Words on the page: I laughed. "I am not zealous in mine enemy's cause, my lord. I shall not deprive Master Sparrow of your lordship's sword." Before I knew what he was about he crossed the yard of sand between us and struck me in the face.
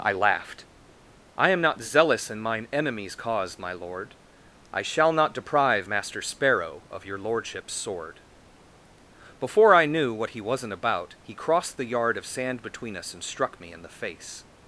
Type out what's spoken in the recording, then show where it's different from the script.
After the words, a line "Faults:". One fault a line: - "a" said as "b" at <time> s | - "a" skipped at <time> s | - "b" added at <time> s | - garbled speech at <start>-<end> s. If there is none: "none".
I laughed. "I am not zealous in mine enemy's cause, my lord. I shall not deprive Master Sparrow of your lordship's sword." Before I knew what he wasn't about he crossed the yard of sand between us and struck me in the face.
Faults:
- "was" said as "wasn't" at 10.4 s